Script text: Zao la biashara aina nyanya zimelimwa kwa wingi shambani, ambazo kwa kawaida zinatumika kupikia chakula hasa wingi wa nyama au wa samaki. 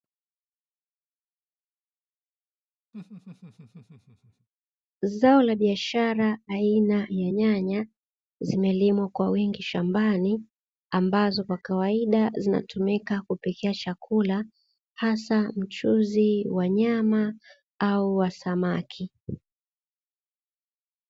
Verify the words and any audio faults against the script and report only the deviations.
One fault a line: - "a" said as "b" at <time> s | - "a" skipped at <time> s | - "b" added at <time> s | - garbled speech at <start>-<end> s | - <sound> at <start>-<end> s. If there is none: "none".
- laugh at 2.9-4.5 s
- "ya" added at 7.1 s
- "wingi" said as "mchuzi" at 15.6 s